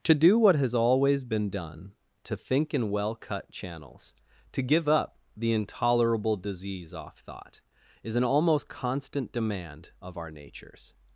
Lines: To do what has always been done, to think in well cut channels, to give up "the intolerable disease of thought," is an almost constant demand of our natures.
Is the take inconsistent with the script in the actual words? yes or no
yes